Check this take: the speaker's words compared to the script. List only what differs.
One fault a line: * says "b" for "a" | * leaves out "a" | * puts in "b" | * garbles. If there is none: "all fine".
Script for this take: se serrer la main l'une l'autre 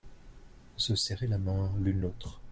all fine